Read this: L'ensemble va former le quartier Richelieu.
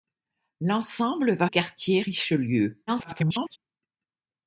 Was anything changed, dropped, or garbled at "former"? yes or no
yes